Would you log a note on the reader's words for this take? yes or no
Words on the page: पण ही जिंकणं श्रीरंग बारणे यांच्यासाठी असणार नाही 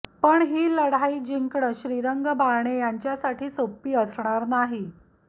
yes